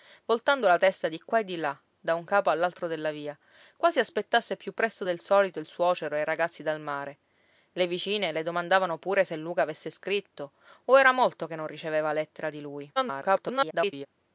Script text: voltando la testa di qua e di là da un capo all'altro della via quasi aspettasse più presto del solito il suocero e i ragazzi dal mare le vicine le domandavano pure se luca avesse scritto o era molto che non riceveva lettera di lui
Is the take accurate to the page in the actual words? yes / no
no